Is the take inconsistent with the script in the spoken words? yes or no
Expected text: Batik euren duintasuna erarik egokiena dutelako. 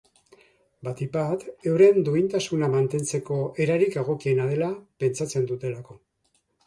yes